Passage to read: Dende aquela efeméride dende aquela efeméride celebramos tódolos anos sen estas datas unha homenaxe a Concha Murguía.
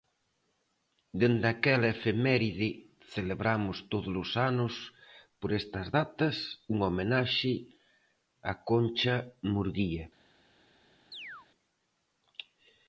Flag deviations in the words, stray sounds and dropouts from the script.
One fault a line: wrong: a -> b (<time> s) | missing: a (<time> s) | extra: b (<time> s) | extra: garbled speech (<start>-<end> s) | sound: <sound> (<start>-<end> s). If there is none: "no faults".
missing: dende aquela efeméride (2.7 s)
wrong: sen -> por (5.4 s)
sound: chirp (11.1-11.5 s)